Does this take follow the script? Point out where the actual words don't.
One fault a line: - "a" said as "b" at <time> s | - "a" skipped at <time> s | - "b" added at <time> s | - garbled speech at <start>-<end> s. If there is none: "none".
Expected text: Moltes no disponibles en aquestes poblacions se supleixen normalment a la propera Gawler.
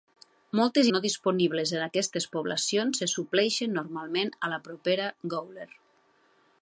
none